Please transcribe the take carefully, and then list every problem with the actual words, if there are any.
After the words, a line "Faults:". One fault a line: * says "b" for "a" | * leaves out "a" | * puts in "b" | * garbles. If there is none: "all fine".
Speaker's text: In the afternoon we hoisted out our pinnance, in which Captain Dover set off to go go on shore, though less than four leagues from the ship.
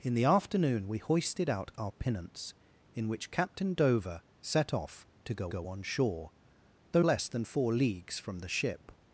In the afternoon we hoisted out our pinnance, in which Captain Dover set off to go go on shore, though less than four leagues from the ship.
Faults:
all fine